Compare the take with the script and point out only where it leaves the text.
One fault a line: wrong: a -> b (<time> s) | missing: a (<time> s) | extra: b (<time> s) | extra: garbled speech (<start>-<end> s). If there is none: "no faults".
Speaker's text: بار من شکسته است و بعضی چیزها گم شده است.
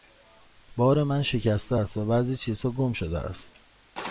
no faults